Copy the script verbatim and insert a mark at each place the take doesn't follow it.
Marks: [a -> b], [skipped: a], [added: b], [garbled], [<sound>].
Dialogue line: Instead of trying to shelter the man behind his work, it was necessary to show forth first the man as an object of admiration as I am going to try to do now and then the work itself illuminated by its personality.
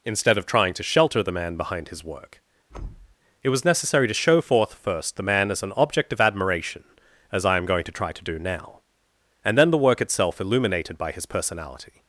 Instead of trying to shelter the man behind his work, [thud] it was necessary to show forth first the man as an object of admiration as I am going to try to do now and then the work itself illuminated by [its -> his] personality.